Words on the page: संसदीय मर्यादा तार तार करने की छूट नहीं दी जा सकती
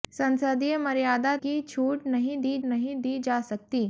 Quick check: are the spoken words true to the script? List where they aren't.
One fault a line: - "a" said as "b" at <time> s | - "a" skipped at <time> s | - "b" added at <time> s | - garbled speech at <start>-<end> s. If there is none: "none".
- "तार तार करने की छूट" said as "की छूट नहीं दी" at 1.4 s